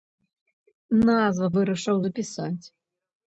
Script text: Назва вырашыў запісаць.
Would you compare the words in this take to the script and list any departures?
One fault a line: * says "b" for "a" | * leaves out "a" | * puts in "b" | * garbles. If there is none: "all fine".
all fine